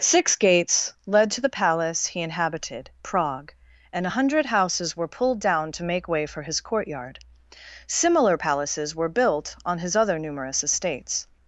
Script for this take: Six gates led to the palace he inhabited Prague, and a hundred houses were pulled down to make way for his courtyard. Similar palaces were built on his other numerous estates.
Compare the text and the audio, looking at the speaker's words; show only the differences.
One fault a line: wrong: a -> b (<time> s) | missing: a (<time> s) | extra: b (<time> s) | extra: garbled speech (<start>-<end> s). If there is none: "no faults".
no faults